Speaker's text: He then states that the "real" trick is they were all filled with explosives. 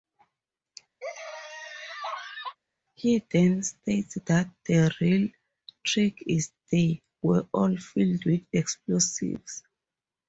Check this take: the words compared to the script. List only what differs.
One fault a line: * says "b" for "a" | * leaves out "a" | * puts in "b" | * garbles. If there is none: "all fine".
all fine